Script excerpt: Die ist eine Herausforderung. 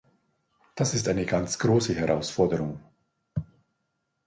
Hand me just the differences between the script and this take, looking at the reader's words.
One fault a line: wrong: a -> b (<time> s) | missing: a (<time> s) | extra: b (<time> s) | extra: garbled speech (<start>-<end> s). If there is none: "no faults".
wrong: Die -> Das (0.7 s)
extra: ganz große (1.3 s)